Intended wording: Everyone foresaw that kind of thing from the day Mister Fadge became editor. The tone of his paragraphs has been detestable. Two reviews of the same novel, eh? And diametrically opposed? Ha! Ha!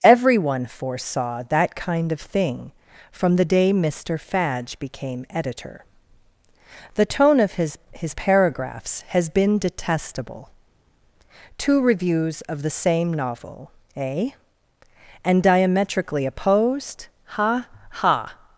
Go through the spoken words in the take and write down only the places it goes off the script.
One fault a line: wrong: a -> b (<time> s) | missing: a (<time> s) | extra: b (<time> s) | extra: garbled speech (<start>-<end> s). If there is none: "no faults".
extra: his (7.9 s)